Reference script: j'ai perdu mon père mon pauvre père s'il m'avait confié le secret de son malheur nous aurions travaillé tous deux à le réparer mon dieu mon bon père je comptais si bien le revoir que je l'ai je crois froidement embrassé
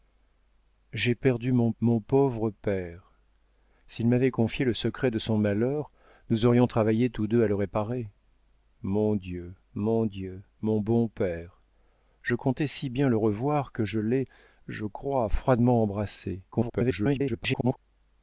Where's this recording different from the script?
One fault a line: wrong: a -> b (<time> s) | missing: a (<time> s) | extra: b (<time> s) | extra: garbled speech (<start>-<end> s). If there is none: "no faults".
missing: père (1.7 s)
extra: dieu mon (10.0 s)
extra: garbled speech (16.5-17.8 s)